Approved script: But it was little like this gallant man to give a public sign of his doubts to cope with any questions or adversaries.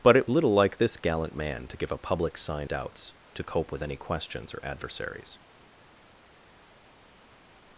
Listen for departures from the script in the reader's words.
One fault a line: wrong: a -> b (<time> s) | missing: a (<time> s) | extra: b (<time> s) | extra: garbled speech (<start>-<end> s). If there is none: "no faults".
missing: was (0.3 s)
missing: of his (2.7 s)